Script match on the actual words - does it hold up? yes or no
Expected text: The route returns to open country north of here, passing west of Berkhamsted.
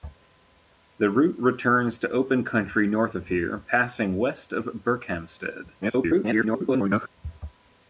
no